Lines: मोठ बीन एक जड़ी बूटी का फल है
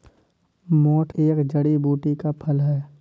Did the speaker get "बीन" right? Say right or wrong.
wrong